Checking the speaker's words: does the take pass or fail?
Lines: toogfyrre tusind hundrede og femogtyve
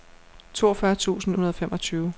pass